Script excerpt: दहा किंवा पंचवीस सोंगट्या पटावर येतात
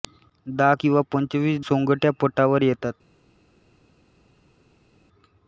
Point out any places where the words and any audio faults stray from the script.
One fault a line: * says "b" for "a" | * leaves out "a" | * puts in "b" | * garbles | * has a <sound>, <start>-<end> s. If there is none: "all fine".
all fine